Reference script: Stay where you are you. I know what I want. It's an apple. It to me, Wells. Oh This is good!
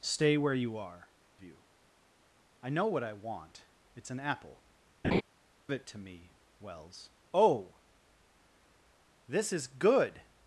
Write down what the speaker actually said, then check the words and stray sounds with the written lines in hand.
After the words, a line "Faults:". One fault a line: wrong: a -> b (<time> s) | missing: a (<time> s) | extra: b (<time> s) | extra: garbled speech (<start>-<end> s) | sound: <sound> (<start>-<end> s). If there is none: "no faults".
Stay where you are you. I know what I want. It's an apple. It to me, Wells. Oh This is good!
Faults:
sound: laugh (5.0-5.2 s)